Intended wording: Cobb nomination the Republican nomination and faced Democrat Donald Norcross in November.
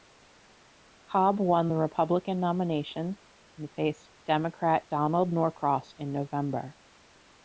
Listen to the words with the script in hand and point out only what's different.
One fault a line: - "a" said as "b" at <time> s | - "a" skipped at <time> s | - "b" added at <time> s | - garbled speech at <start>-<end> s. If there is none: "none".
- "nomination" said as "won" at 1.4 s